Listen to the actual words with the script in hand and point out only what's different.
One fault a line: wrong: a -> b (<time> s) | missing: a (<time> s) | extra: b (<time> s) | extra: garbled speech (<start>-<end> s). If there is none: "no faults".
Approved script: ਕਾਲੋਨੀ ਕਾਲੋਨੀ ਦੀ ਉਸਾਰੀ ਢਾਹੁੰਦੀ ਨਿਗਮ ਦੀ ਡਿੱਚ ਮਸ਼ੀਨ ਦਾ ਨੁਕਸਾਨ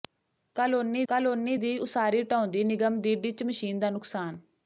no faults